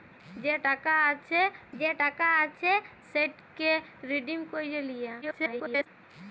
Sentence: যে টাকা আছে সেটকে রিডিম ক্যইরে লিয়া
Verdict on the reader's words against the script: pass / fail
fail